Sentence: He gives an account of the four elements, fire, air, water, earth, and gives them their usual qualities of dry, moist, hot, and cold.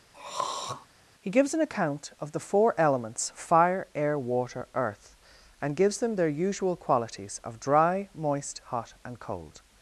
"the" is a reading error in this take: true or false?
false